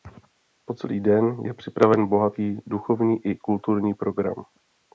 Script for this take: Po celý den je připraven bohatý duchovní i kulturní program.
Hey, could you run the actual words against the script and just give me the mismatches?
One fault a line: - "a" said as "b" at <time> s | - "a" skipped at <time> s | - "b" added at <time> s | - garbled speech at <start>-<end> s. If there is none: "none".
none